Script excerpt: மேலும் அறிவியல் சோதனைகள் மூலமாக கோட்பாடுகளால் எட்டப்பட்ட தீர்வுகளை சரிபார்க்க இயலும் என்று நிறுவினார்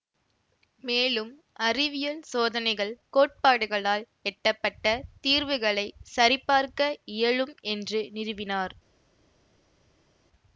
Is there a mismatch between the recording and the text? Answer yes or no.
yes